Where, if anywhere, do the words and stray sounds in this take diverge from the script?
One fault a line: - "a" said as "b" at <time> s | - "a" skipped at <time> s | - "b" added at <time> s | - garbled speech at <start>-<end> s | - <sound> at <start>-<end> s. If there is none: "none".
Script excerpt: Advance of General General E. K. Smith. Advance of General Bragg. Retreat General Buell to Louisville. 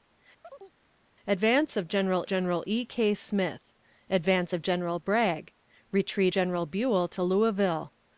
- chirp at 0.4-0.7 s